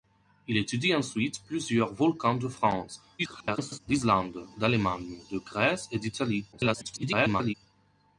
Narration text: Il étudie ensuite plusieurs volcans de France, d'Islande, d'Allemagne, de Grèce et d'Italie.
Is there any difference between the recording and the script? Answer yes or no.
yes